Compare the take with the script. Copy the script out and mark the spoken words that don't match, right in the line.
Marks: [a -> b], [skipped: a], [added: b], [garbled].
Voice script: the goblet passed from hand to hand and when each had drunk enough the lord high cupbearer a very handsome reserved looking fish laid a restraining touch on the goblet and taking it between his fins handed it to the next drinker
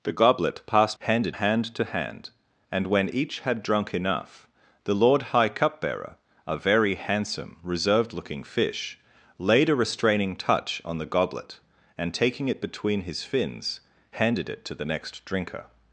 the goblet passed [from -> handed] hand to hand and when each had drunk enough the lord high cupbearer a very handsome reserved looking fish laid a restraining touch on the goblet and taking it between his fins handed it to the next drinker